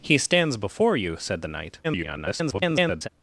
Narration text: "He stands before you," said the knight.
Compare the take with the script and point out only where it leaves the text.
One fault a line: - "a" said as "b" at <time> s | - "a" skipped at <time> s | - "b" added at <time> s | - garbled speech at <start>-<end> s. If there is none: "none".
- garbled speech at 1.8-3.1 s